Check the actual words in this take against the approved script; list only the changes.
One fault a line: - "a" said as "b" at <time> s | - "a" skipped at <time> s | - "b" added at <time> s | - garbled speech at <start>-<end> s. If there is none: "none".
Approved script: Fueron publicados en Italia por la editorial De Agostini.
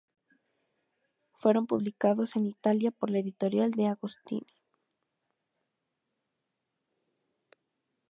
none